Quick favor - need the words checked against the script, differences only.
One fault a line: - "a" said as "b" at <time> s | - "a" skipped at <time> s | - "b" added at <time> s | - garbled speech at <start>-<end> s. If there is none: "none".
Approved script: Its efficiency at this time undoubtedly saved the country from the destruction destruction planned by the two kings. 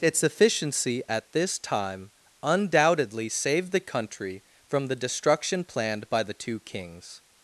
- "destruction" skipped at 5.6 s